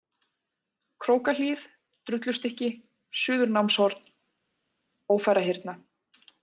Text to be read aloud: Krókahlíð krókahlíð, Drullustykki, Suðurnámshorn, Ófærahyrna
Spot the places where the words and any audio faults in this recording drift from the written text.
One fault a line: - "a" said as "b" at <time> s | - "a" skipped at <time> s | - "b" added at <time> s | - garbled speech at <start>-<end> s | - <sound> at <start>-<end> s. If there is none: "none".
- "krókahlíð" skipped at 1.6 s